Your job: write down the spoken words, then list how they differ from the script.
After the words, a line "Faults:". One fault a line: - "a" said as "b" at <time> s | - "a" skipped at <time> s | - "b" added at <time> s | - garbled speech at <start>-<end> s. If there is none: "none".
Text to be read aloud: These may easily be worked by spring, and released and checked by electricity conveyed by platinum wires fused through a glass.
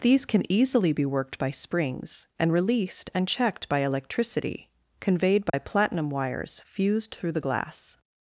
These can easily be worked by springs, and released and checked by electricity conveyed by platinum wires fused through the glass.
Faults:
- "may" said as "can" at 0.2 s
- "spring" said as "springs" at 1.5 s
- "a" said as "the" at 7.3 s